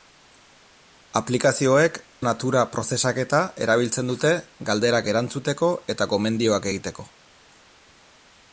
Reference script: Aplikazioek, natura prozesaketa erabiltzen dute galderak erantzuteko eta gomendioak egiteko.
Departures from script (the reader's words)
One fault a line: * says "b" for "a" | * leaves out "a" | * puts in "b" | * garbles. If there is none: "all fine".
all fine